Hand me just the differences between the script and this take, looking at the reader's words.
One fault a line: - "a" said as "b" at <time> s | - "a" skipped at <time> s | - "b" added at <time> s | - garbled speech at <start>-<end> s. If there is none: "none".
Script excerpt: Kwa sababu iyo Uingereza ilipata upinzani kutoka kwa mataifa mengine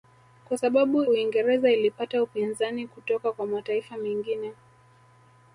- "iyo" skipped at 1.0 s